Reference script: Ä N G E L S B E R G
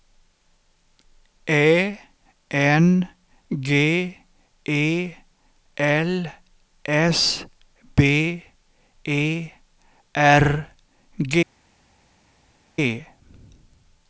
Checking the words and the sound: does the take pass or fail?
pass